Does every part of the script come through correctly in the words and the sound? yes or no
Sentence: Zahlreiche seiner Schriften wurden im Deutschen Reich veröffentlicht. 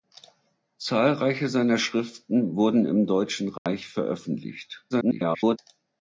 no